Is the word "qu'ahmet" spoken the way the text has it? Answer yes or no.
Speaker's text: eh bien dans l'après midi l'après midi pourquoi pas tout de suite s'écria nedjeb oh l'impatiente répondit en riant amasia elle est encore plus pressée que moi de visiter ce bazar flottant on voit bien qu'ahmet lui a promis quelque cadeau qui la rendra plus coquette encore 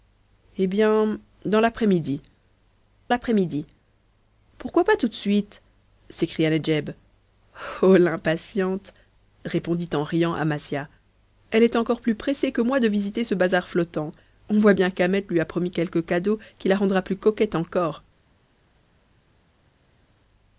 yes